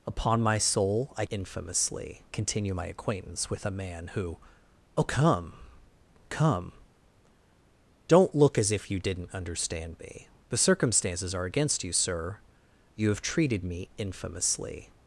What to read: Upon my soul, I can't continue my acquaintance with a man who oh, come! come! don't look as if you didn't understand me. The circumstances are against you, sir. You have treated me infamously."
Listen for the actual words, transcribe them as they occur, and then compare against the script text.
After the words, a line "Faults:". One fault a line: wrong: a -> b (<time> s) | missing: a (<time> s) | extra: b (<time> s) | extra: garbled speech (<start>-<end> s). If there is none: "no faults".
Upon my soul, I infamously continue my acquaintance with a man who oh, come! come! don't look as if you didn't understand me. The circumstances are against you, sir. You have treated me infamously."
Faults:
wrong: can't -> infamously (1.3 s)